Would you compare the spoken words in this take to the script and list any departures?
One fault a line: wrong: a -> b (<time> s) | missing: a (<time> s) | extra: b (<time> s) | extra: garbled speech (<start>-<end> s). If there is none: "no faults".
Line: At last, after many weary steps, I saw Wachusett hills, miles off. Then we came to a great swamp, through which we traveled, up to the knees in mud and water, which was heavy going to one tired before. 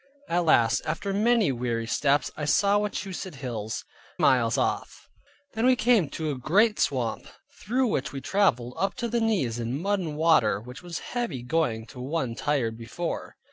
no faults